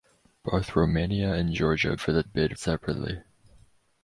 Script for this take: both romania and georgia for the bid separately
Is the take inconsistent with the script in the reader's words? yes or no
no